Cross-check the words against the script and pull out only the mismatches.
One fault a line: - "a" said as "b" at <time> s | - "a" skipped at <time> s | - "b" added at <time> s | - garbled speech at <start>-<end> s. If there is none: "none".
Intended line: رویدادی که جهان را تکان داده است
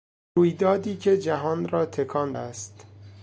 - "داده" skipped at 2.3 s